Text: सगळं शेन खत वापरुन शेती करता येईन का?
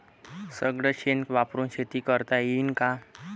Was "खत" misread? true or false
true